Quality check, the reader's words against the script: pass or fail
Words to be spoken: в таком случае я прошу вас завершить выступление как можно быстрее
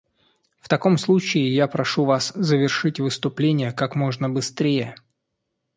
pass